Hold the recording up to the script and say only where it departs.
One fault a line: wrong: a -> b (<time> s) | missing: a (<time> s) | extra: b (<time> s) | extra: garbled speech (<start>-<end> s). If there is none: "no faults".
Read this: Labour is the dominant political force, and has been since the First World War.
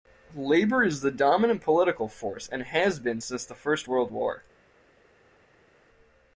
no faults